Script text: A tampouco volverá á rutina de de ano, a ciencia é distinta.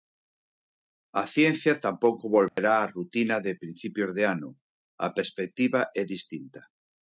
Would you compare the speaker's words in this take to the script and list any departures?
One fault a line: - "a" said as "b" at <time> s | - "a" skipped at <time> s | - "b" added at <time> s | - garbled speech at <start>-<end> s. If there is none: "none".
- "ciencia" added at 1.3 s
- "principios" added at 3.6 s
- "ciencia" said as "perspectiva" at 5.2 s